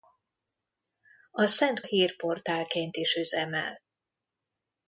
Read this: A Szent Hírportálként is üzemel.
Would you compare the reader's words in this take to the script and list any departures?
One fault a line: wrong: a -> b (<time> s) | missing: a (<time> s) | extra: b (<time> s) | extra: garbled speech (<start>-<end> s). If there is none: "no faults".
no faults